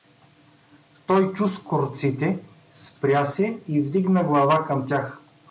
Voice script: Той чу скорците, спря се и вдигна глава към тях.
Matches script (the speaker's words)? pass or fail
pass